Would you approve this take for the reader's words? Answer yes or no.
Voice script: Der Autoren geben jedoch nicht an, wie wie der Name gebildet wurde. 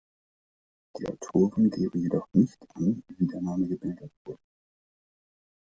no